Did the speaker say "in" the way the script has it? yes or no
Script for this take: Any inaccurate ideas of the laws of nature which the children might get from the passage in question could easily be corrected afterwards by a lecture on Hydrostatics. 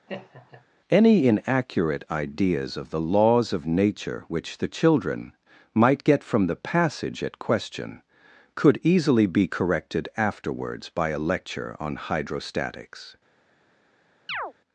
no